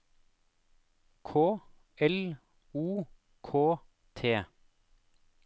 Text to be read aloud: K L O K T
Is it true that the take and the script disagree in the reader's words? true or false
false